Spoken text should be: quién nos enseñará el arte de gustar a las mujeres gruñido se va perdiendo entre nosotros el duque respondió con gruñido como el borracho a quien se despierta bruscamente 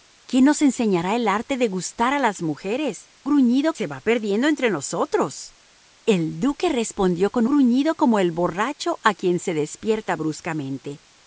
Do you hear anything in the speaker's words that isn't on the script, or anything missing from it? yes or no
no